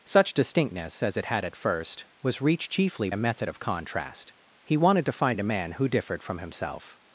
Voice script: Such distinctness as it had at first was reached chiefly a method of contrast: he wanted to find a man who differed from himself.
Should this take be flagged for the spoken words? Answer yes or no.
no